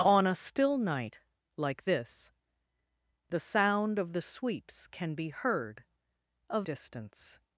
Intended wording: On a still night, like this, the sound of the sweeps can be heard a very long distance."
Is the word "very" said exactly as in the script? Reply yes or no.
no